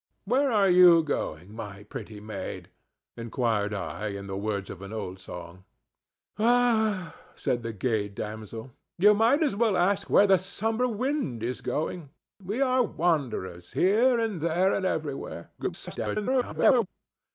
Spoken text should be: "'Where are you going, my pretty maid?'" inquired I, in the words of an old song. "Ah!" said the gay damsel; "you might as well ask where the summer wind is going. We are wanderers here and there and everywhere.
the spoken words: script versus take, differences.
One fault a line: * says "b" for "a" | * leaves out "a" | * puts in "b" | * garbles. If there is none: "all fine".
* garbles